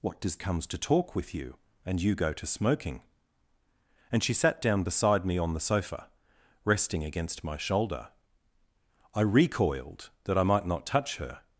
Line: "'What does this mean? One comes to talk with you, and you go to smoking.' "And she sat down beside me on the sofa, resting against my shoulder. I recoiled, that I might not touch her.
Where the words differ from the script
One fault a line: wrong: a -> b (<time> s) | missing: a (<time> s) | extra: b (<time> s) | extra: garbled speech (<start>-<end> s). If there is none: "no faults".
missing: this mean One (0.4 s)